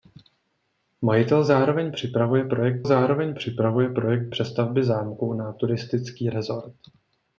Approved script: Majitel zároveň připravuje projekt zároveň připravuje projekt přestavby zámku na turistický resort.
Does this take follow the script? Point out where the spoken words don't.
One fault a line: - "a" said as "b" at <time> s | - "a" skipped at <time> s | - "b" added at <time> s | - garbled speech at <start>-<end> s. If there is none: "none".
none